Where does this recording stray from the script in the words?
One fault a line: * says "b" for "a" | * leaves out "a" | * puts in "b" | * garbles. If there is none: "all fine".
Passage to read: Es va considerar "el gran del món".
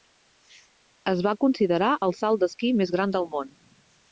* puts in "salt d'esquí més"